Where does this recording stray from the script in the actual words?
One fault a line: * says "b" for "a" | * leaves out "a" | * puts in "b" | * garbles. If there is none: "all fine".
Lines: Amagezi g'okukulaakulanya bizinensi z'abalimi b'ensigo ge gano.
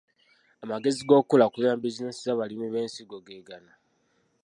all fine